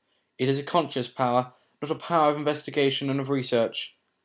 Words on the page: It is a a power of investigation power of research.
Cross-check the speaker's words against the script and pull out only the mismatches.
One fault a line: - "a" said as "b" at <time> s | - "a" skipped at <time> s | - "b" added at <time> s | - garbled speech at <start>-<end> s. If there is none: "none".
- "conscious power not" added at 0.6 s
- "power" said as "and" at 3.1 s